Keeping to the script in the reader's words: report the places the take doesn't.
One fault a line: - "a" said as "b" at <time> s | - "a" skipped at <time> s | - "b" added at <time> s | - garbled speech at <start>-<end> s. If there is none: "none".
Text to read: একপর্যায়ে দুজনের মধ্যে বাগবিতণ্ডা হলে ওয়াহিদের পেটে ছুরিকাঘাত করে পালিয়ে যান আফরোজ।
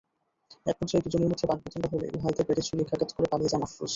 none